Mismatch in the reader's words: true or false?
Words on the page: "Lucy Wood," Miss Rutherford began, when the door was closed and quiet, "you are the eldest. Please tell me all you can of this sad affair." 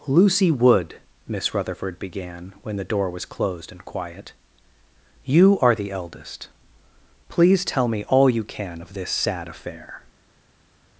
false